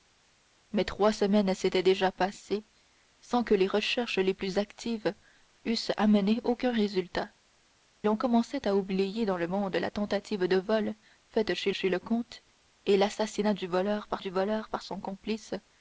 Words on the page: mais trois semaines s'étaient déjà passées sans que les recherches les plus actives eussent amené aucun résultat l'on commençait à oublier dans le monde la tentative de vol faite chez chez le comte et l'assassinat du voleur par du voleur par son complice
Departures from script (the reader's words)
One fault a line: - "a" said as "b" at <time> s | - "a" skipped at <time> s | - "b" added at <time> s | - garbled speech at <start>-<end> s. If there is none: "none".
none